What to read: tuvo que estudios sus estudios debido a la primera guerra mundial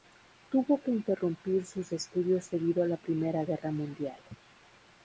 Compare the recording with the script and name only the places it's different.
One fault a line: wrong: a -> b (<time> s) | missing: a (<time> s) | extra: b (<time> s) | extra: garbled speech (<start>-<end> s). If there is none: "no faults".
wrong: estudios -> interrumpir (0.9 s)